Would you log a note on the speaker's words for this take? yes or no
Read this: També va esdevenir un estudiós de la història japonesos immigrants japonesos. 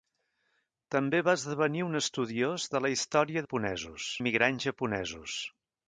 no